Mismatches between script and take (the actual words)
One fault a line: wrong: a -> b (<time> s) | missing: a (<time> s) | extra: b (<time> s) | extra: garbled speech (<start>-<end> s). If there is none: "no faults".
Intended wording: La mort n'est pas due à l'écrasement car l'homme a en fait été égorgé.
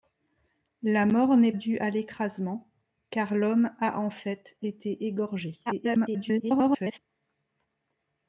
missing: pas (1.5 s)
extra: garbled speech (5.7-7.0 s)